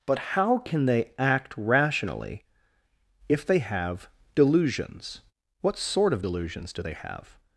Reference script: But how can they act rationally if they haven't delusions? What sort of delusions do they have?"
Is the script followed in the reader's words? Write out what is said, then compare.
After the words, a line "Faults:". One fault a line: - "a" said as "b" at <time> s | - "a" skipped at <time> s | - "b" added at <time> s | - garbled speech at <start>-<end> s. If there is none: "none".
But how can they act rationally if they have delusions? What sort of delusions do they have?"
Faults:
- "haven't" said as "have" at 3.6 s